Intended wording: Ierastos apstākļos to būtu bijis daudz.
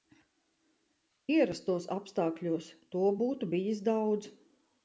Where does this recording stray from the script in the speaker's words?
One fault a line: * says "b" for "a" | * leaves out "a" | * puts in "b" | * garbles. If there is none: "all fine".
all fine